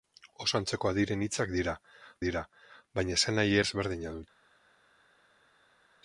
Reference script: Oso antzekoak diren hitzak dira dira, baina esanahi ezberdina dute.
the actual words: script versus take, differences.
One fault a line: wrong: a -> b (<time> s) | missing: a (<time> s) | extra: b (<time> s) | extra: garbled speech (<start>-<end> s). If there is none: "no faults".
no faults